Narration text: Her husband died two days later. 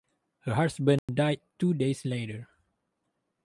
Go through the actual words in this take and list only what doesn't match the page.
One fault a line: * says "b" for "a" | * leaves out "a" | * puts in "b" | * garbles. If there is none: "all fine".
all fine